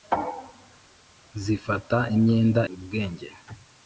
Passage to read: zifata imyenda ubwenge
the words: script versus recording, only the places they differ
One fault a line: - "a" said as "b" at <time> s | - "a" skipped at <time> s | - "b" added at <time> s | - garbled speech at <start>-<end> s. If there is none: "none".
none